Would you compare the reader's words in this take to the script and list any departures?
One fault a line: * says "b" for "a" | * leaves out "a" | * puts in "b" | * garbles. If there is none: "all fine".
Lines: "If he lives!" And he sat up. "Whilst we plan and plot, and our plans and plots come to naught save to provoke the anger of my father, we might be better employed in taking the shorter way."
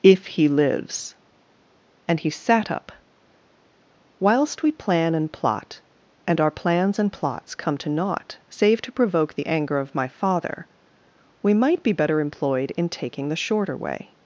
all fine